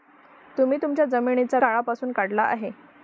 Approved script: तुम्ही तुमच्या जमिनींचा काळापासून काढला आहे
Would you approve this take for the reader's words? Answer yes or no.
yes